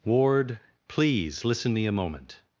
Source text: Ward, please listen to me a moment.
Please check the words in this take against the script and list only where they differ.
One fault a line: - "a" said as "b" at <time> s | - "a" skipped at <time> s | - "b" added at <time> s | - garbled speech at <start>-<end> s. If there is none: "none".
- "to" skipped at 1.7 s